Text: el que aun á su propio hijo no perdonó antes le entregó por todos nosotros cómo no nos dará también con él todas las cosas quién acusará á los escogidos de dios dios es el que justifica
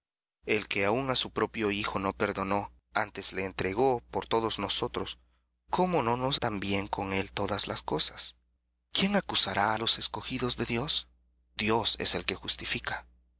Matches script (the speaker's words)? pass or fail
fail